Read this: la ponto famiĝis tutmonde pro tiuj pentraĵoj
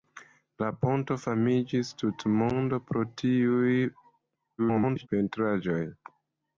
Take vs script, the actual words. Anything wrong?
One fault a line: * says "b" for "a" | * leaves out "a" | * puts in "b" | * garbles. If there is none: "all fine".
* garbles